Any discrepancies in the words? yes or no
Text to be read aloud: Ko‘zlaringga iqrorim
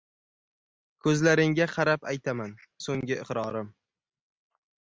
yes